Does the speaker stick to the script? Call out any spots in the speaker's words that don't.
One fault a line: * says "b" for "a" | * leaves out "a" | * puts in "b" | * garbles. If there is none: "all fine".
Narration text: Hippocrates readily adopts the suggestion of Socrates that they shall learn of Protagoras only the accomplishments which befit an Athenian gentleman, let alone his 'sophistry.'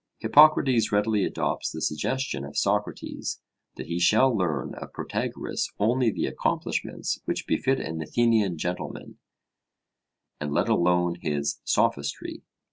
* says "he" for "they"
* puts in "and"